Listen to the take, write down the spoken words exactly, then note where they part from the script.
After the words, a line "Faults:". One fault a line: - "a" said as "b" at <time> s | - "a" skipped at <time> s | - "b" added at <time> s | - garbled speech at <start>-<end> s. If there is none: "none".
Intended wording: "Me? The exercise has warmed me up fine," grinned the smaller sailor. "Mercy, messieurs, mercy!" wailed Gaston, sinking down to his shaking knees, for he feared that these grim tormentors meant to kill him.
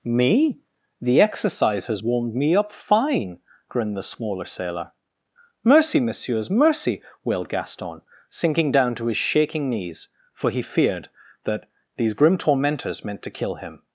"Me? The exercise has warmed me up fine," grinned the smaller sailor. "Mercy, messieurs, mercy!" wailed Gaston, sinking down to his shaking knees, for he feared that these grim tormentors meant to kill him.
Faults:
none